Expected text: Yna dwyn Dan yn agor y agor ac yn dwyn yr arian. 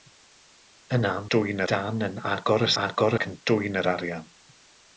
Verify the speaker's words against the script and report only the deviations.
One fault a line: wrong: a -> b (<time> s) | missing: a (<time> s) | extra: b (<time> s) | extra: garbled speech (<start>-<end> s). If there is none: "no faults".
no faults